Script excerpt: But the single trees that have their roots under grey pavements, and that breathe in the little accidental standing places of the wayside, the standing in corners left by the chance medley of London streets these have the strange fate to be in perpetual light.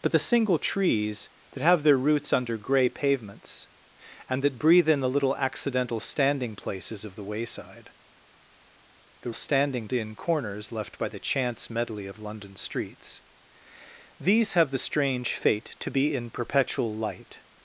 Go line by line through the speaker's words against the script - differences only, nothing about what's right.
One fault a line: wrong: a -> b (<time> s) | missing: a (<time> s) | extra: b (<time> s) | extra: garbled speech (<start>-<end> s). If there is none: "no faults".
no faults